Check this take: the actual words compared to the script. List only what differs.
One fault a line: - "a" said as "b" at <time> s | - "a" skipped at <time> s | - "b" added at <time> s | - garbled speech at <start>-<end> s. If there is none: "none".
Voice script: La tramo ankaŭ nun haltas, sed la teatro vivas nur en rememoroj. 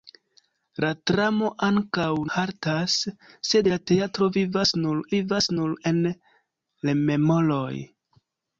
- "nun" skipped at 2.1 s
- "vivas nur" added at 5.2 s